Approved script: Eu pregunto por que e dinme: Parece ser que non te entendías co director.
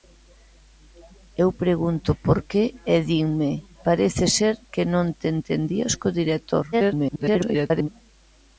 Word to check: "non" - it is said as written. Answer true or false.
true